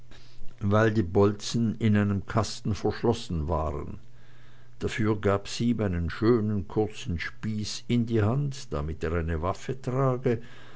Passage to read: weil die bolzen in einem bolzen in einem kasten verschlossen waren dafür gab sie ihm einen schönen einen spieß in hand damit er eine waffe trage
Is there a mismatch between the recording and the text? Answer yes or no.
yes